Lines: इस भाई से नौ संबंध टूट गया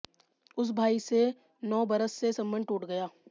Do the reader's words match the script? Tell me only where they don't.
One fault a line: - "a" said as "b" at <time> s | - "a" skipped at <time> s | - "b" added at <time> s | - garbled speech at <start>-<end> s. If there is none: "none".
- "इस" said as "उस" at 0.6 s
- "बरस से" added at 1.9 s